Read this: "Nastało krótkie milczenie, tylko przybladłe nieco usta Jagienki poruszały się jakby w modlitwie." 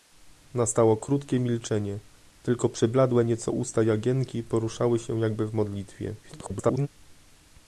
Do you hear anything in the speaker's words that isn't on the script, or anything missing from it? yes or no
yes